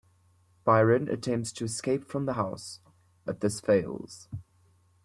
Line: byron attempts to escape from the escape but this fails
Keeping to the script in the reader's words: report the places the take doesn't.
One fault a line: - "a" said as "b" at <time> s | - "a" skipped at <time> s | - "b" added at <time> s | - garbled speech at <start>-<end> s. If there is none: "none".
- "escape" said as "house" at 2.3 s